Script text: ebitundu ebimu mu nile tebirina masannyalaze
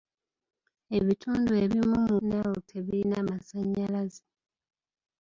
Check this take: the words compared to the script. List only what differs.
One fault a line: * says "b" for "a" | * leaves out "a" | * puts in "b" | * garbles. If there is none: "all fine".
all fine